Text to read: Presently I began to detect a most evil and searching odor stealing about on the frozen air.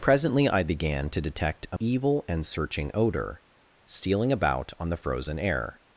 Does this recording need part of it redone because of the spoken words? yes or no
yes